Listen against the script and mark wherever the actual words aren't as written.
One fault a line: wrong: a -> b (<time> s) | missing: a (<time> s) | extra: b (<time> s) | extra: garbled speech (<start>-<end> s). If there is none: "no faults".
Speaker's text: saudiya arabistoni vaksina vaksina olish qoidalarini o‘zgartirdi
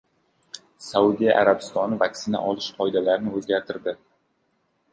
missing: vaksina (2.4 s)